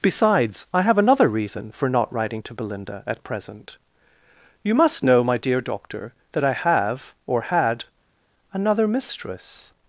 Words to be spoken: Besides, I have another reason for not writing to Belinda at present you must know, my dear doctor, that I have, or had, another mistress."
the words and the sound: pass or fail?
pass